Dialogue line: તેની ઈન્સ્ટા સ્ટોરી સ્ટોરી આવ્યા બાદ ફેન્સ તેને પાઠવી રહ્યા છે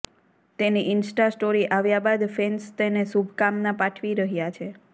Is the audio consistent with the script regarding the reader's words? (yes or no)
no